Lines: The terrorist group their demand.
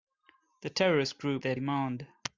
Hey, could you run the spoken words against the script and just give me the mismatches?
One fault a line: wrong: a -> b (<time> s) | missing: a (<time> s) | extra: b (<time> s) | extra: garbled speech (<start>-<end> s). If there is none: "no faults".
no faults